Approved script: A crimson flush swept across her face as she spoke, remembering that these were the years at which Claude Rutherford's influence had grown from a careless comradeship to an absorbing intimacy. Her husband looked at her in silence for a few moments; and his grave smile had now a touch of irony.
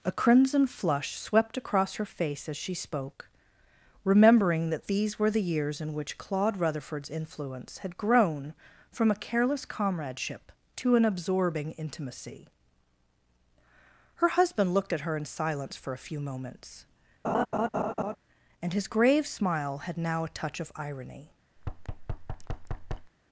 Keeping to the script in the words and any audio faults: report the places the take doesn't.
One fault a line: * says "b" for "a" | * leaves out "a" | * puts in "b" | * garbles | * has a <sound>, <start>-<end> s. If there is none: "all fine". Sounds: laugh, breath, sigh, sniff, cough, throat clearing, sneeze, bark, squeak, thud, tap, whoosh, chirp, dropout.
* says "in" for "at"
* has a laugh, 17.2-18.2 s
* has a thud, 21.6-23.1 s